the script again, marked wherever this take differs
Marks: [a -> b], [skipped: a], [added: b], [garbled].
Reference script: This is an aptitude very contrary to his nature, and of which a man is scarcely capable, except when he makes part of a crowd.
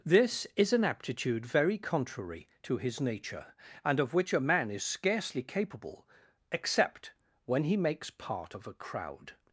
This is an aptitude very contrary to his nature, and of which a man is scarcely capable, except when he makes part of a crowd.